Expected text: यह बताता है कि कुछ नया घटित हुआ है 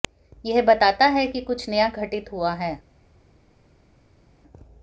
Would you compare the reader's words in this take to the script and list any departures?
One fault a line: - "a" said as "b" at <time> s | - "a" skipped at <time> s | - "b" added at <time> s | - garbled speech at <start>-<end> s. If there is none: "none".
none